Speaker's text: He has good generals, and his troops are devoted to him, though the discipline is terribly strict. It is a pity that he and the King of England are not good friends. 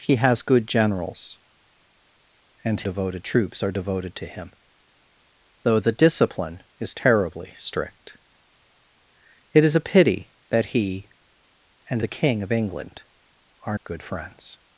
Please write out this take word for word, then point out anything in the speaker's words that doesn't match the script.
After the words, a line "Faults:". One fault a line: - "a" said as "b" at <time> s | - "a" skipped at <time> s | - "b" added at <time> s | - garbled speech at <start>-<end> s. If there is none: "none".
He has good generals, and devoted troops are devoted to him, though the discipline is terribly strict. It is a pity that he and the King of England are good friends.
Faults:
- "his" said as "devoted" at 2.8 s
- "not" skipped at 13.8 s